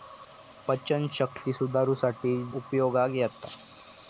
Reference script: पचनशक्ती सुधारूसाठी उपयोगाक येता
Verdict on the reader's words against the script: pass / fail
pass